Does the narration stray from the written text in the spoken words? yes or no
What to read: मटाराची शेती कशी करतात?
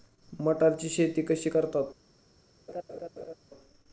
no